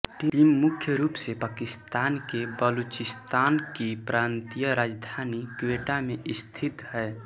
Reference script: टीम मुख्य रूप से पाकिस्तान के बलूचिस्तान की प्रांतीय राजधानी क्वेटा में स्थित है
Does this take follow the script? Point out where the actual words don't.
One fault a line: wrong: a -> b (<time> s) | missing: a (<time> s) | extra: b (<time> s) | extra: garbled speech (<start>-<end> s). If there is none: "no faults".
no faults